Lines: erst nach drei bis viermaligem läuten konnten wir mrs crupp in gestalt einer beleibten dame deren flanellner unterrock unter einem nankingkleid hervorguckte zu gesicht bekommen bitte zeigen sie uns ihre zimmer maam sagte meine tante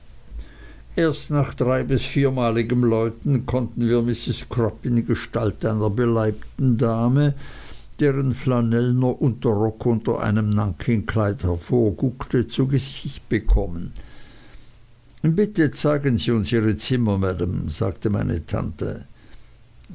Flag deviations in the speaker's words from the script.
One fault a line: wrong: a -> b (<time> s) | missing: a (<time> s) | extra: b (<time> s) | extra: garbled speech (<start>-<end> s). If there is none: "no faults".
no faults